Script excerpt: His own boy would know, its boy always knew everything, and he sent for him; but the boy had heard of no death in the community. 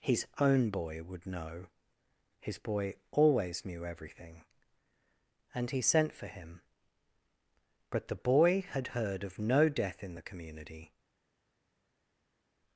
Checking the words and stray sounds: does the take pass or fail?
fail